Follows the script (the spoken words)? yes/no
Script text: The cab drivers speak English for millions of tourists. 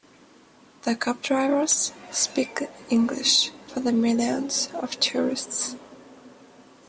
no